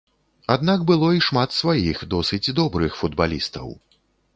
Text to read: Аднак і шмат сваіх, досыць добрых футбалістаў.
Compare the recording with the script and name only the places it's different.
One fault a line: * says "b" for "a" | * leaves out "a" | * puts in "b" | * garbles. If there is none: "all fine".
* puts in "было"